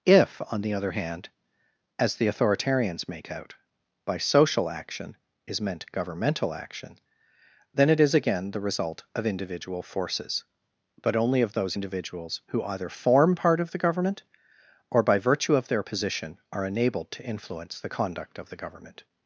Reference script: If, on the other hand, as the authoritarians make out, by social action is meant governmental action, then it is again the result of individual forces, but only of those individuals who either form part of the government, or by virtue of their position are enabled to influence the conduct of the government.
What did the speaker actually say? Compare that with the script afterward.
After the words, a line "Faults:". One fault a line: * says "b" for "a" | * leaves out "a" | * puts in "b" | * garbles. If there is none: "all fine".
If, on the other hand, as the authoritarians make out, by social action is meant governmental action, then it is again the result of individual forces, but only of those individuals who either form part of the government, or by virtue of their position are enabled to influence the conduct of the government.
Faults:
all fine